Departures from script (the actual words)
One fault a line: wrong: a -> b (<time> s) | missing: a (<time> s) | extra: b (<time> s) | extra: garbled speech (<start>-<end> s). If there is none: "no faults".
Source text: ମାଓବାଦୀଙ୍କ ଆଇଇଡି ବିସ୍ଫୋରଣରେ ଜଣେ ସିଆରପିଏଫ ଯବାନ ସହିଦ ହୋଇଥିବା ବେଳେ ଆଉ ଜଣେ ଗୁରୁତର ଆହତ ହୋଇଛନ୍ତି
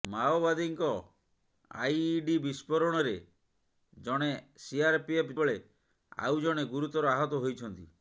missing: ଯବାନ ସହିଦ ହୋଇଥିବା (5.4 s)